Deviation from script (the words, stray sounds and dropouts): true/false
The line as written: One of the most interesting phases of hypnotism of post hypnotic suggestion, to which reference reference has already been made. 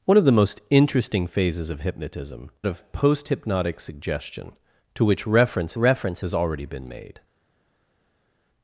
false